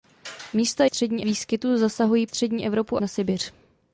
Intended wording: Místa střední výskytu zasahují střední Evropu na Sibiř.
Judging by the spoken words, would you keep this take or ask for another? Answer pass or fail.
pass